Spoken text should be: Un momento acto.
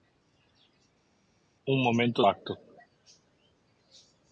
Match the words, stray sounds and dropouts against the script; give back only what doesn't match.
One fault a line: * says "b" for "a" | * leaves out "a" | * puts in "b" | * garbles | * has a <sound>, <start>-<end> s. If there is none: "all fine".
all fine